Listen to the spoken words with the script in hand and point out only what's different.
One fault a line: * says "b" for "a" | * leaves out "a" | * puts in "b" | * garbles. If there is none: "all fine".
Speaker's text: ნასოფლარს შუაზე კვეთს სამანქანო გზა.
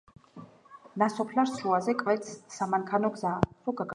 all fine